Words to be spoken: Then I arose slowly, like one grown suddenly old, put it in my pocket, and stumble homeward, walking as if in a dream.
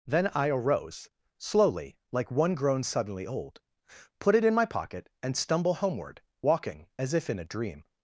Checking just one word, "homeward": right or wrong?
right